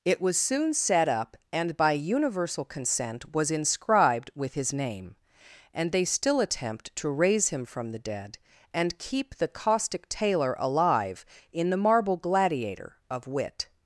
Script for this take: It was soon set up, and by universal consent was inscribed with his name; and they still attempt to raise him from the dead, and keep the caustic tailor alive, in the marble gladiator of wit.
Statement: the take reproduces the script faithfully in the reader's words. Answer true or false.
true